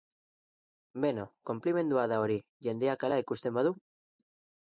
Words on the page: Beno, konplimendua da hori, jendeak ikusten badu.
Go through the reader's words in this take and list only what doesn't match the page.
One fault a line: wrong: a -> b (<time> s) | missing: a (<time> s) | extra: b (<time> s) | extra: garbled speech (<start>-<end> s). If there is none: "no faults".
extra: hala (3.1 s)